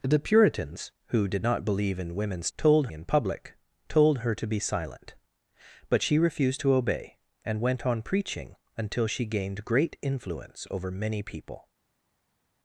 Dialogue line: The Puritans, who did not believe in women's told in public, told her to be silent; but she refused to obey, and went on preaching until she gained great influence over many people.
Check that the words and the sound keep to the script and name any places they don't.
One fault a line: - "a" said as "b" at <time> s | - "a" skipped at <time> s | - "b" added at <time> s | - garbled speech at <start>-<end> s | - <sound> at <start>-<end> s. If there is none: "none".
none